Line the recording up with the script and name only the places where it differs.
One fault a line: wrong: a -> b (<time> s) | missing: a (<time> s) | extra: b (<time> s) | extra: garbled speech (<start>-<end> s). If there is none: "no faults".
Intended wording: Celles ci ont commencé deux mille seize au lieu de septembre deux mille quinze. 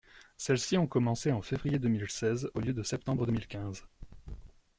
extra: en février (1.3 s)